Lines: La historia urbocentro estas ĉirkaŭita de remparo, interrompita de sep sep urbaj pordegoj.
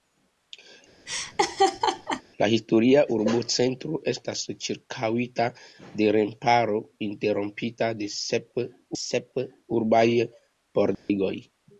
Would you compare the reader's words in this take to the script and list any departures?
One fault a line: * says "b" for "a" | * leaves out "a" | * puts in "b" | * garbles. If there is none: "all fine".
all fine